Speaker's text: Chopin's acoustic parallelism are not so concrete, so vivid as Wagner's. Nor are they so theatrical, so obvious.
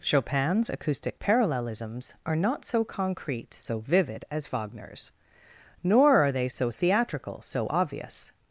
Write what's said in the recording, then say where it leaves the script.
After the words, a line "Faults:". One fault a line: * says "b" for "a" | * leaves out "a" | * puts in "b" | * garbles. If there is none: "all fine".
Chopin's acoustic parallelisms are not so concrete, so vivid as Wagner's. Nor are they so theatrical, so obvious.
Faults:
* says "parallelisms" for "parallelism"